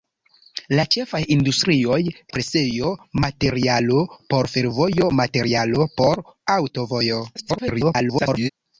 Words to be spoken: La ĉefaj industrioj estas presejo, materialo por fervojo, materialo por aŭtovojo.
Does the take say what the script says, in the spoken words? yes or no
no